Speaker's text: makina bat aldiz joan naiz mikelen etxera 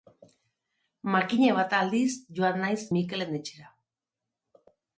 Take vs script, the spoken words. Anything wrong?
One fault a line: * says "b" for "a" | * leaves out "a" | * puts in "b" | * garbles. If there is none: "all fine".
all fine